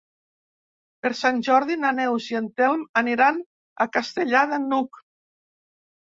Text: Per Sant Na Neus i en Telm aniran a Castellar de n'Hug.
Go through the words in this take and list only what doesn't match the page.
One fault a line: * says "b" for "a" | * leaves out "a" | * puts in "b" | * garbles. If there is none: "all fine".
* puts in "Jordi"